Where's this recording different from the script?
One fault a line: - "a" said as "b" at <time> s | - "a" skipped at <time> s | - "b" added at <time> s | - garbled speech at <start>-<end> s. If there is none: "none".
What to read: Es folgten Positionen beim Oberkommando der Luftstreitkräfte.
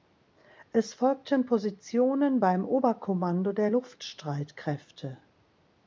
none